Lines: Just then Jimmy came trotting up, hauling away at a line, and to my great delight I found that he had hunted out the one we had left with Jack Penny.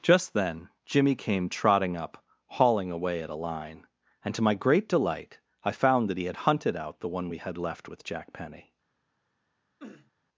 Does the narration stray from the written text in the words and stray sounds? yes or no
yes